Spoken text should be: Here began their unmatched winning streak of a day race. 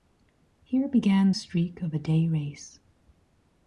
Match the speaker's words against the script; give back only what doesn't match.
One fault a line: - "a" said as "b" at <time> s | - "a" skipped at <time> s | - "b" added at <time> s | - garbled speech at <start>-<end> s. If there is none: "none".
- "their unmatched winning" skipped at 1.3 s